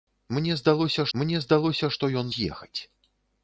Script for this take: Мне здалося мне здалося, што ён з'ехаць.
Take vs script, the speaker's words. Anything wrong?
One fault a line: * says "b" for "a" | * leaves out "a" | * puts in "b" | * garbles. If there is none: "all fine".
all fine